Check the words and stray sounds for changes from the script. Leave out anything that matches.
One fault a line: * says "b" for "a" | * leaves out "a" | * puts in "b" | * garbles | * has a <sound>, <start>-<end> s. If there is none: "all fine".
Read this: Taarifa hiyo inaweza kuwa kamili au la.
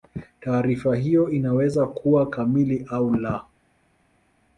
all fine